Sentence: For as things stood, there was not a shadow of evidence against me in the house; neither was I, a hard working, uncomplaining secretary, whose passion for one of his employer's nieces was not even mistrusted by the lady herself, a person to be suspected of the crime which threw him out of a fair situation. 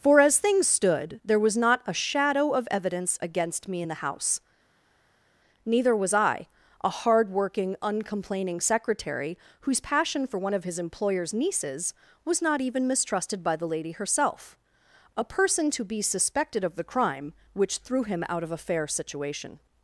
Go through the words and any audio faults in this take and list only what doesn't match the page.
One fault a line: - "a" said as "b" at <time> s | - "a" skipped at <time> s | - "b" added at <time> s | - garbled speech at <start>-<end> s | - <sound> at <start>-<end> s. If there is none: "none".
none